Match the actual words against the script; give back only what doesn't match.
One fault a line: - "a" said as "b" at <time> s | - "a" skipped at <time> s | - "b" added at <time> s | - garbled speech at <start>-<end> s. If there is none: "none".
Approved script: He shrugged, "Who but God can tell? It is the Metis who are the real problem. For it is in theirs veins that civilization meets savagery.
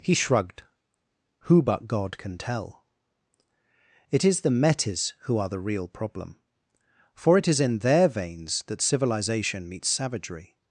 - "theirs" said as "their" at 7.8 s